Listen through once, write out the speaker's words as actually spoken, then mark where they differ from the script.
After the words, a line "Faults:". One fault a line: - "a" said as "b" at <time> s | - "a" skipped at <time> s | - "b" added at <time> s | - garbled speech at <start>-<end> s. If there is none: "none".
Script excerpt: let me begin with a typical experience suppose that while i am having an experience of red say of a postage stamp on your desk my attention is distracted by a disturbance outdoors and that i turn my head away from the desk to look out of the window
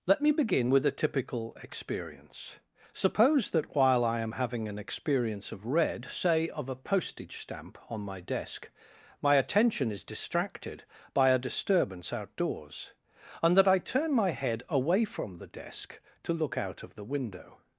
let me begin with a typical experience suppose that while i am having an experience of red say of a postage stamp on my desk my attention is distracted by a disturbance outdoors and that i turn my head away from the desk to look out of the window
Faults:
- "your" said as "my" at 8.0 s